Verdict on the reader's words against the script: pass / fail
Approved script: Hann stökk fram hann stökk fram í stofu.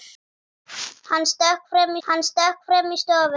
pass